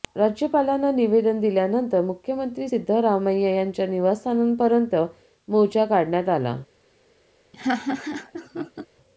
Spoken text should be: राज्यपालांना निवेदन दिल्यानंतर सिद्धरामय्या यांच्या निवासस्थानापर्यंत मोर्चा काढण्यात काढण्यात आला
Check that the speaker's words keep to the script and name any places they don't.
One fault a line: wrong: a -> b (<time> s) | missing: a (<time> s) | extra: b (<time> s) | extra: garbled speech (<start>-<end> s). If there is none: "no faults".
extra: मुख्यमंत्री (2.0 s)
missing: काढण्यात (6.3 s)